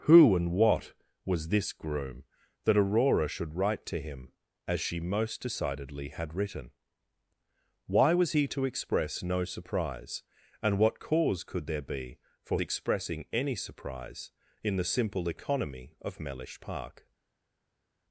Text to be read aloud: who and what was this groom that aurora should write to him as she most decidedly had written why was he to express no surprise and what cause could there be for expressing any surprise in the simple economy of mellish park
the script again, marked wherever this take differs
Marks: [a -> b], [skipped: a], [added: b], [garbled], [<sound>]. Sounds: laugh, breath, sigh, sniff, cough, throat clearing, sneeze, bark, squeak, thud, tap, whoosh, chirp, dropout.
who and what was this groom that aurora should write to him as she most decidedly had written why was he to express no surprise and what cause could there be for expressing any surprise in the simple economy of mellish park